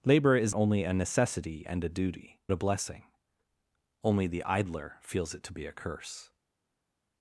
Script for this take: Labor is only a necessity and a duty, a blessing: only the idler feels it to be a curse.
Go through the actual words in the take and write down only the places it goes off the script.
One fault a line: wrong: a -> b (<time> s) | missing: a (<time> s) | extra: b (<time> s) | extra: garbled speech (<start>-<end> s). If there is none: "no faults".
no faults